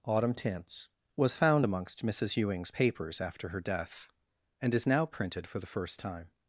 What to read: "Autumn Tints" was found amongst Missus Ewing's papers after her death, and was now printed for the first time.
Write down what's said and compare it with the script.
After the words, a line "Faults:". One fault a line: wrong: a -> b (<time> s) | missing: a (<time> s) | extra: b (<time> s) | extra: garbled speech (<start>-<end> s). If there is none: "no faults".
"Autumn Tints" was found amongst Missus Ewing's papers after her death, and is now printed for the first time.
Faults:
wrong: was -> is (4.7 s)